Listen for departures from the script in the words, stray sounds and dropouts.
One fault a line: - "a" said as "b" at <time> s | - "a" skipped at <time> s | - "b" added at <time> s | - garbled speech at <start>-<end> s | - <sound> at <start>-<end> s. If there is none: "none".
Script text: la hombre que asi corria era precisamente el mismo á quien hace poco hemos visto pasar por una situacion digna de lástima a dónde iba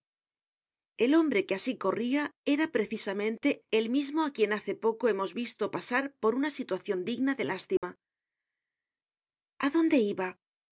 - "la" said as "el" at 1.0 s
- dropout at 7.8-7.8 s